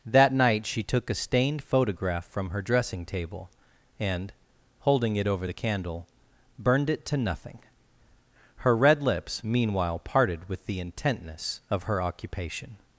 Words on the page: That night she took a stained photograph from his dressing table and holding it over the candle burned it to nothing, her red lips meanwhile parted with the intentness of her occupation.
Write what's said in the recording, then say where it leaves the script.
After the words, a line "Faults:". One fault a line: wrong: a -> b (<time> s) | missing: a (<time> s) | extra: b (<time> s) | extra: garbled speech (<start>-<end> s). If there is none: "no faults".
That night she took a stained photograph from her dressing table and holding it over the candle burned it to nothing, her red lips meanwhile parted with the intentness of her occupation.
Faults:
wrong: his -> her (2.5 s)